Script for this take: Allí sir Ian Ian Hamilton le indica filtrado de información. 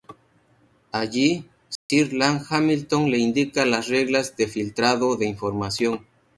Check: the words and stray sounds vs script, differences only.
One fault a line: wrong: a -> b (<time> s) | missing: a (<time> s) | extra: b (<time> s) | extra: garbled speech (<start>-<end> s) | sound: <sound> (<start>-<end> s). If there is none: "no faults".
sound: dropout (1.8-1.9 s)
missing: Ian (2.4 s)
extra: las reglas de (3.6 s)